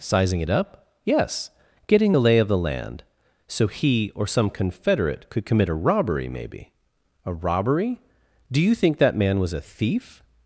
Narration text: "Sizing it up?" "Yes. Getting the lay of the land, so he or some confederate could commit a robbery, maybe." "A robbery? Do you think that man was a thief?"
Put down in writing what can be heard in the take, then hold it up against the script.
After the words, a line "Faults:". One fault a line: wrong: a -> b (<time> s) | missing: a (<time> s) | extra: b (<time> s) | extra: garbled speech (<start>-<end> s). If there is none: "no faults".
"Sizing it up?" "Yes. Getting the lay of the land, so he or some confederate could commit a robbery, maybe." "A robbery? Do you think that man was a thief?"
Faults:
no faults